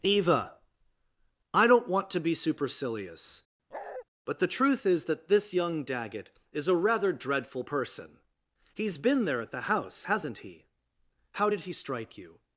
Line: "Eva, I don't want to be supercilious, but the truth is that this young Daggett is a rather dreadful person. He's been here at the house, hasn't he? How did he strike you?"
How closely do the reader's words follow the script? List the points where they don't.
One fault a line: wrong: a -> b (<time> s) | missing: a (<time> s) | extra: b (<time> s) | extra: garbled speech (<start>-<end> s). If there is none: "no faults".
wrong: here -> there (9.2 s)